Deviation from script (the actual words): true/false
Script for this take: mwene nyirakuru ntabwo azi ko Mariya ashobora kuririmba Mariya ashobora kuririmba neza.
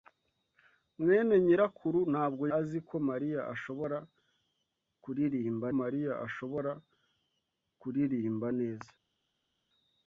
false